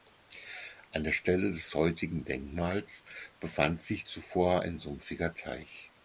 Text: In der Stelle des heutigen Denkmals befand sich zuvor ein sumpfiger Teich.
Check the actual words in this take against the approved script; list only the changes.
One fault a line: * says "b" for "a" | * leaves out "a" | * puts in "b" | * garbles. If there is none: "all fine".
* says "An" for "In"